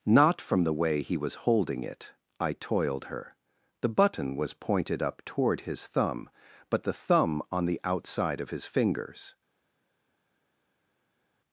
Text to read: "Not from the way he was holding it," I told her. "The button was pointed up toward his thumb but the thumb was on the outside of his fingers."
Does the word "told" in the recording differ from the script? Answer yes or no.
yes